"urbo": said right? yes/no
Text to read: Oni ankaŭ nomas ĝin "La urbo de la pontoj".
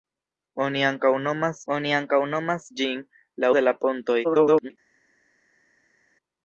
no